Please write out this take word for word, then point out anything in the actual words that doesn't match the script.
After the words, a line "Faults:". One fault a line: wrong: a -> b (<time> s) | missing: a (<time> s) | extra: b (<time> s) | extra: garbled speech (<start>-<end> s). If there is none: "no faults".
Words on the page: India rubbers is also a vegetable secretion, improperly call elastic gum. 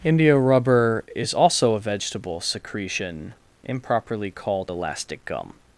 India rubber is also a vegetable secretion, improperly called elastic gum.
Faults:
wrong: rubbers -> rubber (0.3 s)
wrong: call -> called (4.3 s)